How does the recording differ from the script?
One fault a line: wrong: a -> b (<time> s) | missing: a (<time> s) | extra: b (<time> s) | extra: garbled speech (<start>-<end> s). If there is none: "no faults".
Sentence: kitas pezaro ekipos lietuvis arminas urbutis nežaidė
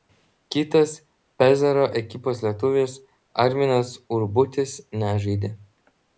no faults